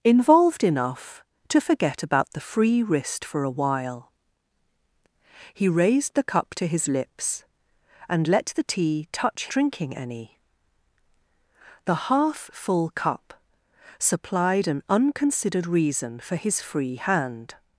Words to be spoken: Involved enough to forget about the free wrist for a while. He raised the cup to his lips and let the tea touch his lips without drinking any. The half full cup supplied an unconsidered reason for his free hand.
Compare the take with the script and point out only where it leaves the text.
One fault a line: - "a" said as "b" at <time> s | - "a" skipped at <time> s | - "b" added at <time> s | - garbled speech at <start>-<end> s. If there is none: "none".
- "his lips without" skipped at 9.5 s